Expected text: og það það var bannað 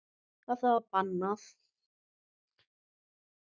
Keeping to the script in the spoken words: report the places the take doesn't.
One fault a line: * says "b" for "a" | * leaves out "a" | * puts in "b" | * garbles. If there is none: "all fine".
* leaves out "það"